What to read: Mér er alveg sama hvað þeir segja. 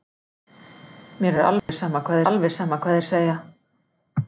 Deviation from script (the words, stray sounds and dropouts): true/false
true